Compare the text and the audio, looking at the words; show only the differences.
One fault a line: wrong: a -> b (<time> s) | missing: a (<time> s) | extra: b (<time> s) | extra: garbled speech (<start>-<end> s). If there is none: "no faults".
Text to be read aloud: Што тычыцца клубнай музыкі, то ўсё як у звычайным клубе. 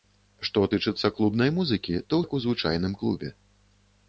missing: ўсё (2.2 s)